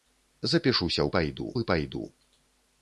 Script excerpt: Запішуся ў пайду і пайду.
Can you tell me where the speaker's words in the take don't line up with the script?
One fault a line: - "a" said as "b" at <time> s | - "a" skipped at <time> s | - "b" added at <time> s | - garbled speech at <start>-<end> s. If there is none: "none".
none